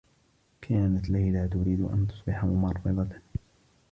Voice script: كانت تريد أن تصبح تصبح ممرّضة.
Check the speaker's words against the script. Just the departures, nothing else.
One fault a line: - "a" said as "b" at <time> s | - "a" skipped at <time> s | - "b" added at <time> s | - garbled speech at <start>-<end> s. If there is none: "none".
- "ليلى" added at 1.1 s
- "تصبح" skipped at 2.5 s